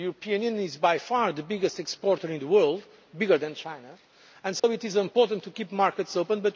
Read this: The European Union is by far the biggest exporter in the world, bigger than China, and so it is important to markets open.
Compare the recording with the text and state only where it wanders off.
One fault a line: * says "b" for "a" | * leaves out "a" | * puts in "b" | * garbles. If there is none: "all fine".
* puts in "keep"